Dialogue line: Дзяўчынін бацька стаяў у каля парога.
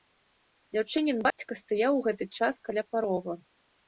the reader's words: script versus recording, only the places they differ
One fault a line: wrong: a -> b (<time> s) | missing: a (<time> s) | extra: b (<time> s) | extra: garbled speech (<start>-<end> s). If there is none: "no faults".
extra: гэты час (2.1 s)